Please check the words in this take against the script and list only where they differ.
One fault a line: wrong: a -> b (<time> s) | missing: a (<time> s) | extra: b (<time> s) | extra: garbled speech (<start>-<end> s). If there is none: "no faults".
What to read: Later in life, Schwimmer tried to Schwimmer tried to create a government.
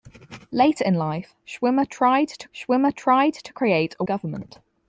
no faults